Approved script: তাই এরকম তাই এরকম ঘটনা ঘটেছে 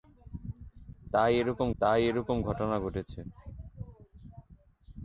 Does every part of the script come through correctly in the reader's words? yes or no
yes